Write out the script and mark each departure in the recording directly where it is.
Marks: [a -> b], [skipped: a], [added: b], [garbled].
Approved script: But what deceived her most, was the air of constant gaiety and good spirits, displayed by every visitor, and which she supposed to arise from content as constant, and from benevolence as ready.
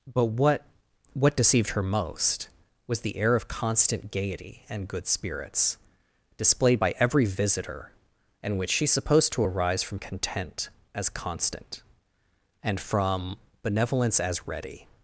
But what [added: what] deceived her most, was the air of constant gaiety and good spirits, displayed by every visitor, and which she supposed to arise from content as constant, and from benevolence as ready.